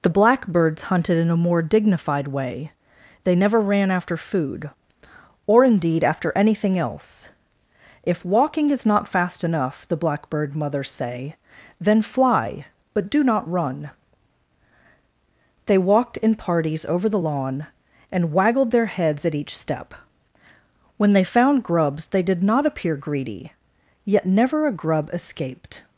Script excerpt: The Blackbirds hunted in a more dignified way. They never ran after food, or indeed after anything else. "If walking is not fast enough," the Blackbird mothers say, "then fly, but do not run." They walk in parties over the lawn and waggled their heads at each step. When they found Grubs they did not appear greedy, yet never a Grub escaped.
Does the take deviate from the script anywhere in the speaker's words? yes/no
yes